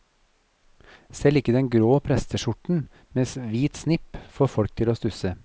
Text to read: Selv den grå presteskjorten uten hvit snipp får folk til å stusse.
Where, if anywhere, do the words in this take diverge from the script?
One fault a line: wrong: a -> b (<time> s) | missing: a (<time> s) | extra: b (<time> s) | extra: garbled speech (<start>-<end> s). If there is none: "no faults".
extra: ikke (1.4 s)
wrong: uten -> med (3.2 s)